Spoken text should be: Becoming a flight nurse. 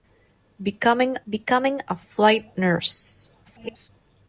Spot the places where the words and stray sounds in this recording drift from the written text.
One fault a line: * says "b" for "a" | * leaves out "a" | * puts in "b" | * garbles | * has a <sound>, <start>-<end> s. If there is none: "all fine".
* puts in "becoming"
* garbles